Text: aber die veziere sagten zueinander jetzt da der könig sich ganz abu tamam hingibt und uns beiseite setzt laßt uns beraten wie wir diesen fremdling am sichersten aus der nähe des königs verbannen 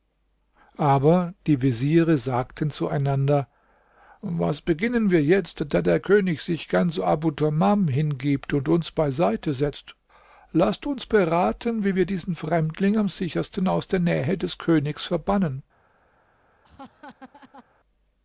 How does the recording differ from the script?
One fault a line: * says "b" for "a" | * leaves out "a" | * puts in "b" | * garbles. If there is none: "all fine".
* puts in "was beginnen wir"